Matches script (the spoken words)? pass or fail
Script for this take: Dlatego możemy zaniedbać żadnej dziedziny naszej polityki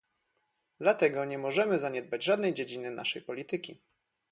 fail